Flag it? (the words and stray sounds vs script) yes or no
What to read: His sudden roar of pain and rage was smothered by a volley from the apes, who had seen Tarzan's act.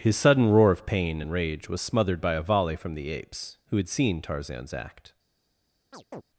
yes